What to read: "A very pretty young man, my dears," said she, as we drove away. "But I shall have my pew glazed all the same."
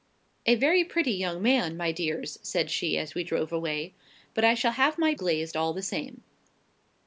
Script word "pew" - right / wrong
wrong